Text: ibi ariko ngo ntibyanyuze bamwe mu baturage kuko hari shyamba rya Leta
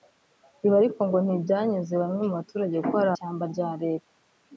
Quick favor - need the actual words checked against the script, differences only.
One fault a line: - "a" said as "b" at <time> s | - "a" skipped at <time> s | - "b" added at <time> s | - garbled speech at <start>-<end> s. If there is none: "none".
none